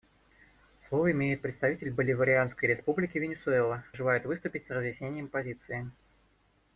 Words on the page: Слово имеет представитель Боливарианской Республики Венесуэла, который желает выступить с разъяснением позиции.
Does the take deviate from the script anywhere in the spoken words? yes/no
yes